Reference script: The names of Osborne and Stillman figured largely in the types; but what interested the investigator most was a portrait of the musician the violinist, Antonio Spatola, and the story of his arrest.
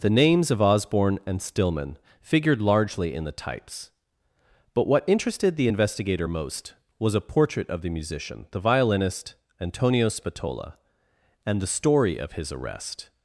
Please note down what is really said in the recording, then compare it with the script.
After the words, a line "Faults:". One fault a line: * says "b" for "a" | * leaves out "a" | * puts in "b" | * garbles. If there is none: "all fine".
The names of Osborne and Stillman figured largely in the types; but what interested the investigator most was a portrait of the musician the violinist, Antonio Spatola, and the story of his arrest.
Faults:
all fine